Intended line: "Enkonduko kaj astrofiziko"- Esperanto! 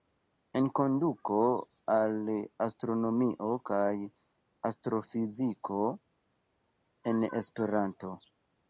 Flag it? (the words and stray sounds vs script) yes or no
yes